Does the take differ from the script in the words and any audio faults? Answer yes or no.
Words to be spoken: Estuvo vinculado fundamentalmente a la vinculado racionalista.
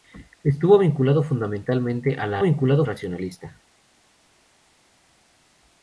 no